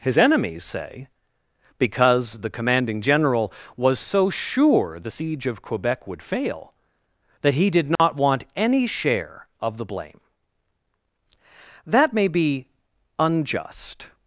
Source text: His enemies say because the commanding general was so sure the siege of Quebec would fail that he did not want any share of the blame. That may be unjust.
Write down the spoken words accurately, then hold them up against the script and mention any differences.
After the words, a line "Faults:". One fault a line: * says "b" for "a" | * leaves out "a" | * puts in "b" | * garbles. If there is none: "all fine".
His enemies say because the commanding general was so sure the siege of Quebec would fail that he did not want any share of the blame. That may be unjust.
Faults:
all fine